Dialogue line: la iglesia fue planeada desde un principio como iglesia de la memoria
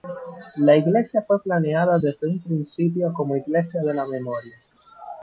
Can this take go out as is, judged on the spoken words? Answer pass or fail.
pass